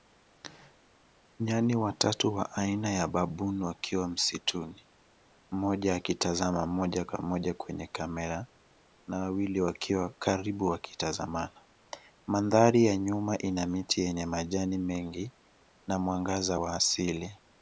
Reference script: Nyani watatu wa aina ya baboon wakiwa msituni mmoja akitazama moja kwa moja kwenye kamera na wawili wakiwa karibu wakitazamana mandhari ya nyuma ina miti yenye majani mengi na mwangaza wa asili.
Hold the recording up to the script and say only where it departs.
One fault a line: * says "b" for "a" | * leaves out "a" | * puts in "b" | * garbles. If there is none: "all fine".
all fine